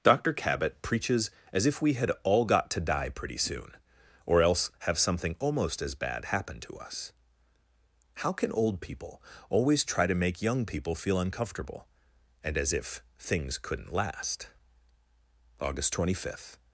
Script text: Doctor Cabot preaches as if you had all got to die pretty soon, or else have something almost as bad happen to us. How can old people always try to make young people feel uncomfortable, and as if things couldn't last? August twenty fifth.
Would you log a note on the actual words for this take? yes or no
yes